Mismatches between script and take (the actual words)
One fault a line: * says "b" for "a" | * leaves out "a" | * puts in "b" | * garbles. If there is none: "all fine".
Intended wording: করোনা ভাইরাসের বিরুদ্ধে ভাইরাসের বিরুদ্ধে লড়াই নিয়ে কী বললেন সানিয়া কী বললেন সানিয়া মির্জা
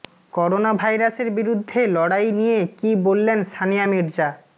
* leaves out "ভাইরাসের বিরুদ্ধে"
* leaves out "কী বললেন সানিয়া"